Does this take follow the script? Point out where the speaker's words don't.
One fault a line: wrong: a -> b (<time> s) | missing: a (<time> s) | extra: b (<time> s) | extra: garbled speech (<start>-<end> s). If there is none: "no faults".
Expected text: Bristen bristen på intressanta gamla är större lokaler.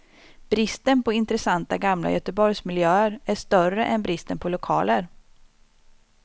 missing: bristen (1.0 s)
extra: göteborgsmiljöer (2.1 s)
extra: än bristen på (3.9 s)